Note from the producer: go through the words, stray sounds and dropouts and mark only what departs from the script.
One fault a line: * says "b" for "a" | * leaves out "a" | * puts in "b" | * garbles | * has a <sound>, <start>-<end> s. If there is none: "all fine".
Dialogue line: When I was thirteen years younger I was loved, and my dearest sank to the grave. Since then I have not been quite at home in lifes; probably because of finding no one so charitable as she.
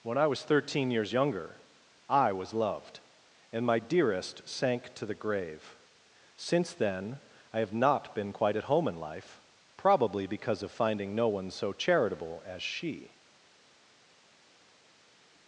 * says "life" for "lifes"